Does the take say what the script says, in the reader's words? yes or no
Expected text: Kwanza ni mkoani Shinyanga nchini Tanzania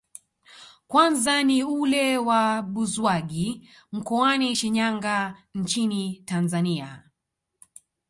no